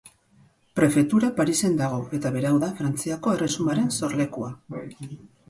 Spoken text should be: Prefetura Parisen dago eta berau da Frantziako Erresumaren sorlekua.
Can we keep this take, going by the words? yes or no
yes